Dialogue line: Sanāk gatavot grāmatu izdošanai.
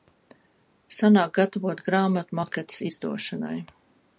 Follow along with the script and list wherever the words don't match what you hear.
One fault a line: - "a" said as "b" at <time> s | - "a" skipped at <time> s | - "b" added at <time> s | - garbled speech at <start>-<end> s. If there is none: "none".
- "maketus" added at 2.4 s